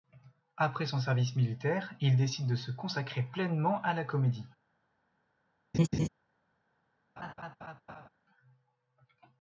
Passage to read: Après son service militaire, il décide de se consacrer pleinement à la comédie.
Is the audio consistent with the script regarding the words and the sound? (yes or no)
no